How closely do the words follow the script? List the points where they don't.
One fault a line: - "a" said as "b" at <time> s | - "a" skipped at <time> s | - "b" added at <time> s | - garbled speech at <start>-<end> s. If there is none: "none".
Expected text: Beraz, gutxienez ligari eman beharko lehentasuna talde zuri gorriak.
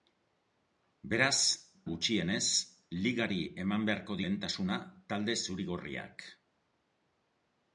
none